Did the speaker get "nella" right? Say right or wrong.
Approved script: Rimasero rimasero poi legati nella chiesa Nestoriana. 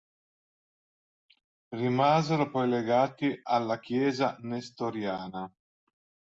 wrong